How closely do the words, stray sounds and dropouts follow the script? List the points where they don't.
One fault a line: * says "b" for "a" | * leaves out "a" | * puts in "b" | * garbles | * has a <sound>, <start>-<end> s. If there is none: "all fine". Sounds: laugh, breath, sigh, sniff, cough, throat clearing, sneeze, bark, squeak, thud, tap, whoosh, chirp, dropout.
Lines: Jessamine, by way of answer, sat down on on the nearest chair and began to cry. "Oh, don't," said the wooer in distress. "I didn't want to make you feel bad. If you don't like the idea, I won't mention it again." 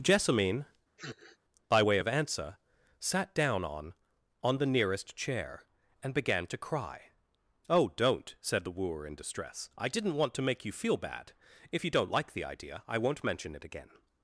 * has a sniff, 1.0-1.4 s